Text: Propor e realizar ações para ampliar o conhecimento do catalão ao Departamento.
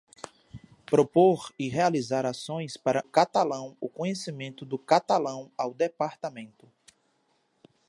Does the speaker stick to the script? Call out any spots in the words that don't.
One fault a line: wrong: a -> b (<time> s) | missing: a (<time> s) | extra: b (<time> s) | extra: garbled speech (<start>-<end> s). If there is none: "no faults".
wrong: ampliar -> catalão (3.0 s)